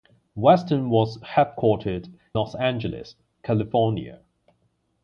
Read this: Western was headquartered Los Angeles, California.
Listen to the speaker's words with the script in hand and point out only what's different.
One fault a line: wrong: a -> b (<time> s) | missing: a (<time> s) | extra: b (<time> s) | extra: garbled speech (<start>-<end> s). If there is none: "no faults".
no faults